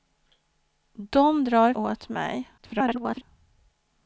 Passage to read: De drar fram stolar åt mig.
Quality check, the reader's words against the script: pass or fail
fail